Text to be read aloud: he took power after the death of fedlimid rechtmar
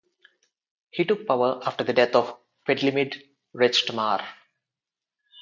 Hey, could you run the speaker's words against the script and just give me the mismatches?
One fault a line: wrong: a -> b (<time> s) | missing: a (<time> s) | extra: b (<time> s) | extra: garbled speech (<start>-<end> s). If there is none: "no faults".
no faults